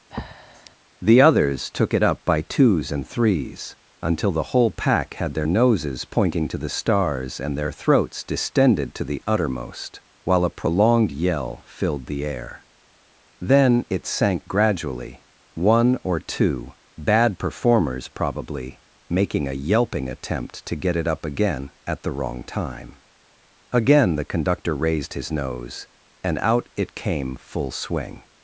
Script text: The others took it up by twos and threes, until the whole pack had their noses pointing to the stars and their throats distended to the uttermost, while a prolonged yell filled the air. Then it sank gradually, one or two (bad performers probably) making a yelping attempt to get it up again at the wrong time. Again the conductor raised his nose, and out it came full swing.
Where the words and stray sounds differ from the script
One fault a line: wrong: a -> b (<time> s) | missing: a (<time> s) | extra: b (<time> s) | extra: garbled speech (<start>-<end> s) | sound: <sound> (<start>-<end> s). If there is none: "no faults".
sound: breath (0.1-0.8 s)